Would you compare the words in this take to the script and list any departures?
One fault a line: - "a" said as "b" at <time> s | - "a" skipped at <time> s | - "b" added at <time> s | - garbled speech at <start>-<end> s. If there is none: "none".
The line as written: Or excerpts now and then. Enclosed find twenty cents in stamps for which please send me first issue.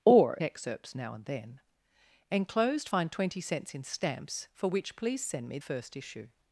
none